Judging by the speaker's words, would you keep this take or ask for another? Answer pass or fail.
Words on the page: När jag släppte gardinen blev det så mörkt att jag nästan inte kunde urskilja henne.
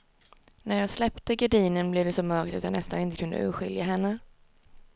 pass